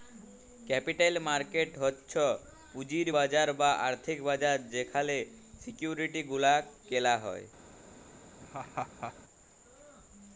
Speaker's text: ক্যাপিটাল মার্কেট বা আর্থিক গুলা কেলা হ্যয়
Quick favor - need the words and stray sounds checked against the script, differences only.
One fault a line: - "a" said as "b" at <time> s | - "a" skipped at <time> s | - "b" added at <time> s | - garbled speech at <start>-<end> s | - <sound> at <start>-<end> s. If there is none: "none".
- "হচ্ছ পুঁজির বাজার" added at 1.8 s
- "বাজার যেখালে সিকিউরিটি" added at 4.2 s
- laugh at 8.4-9.1 s